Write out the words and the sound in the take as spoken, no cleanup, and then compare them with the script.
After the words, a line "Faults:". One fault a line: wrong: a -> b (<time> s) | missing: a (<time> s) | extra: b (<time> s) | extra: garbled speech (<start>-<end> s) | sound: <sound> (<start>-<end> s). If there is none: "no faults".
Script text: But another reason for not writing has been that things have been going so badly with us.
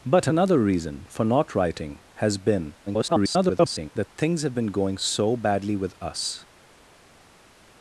But another reason for not writing has been [garbled] that things have been going so badly with us.
Faults:
extra: garbled speech (2.9-3.9 s)